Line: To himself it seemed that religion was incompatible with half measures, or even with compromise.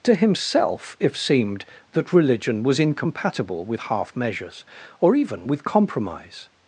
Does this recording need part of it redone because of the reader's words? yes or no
yes